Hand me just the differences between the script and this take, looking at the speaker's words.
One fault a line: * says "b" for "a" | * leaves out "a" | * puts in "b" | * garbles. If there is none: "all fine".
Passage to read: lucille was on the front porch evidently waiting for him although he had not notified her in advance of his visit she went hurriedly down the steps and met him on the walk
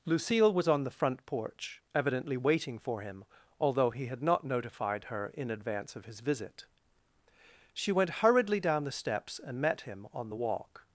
all fine